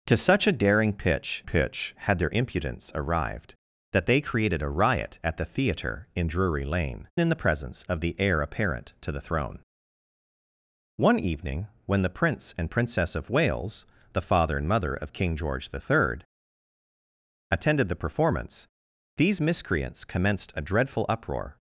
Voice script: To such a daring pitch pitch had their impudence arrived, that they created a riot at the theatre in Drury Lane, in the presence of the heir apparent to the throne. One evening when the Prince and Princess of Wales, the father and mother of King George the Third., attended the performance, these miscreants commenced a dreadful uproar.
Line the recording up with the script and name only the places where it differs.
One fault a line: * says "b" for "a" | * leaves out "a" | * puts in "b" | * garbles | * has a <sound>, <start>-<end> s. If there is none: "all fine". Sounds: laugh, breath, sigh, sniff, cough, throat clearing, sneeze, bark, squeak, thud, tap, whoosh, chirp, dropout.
all fine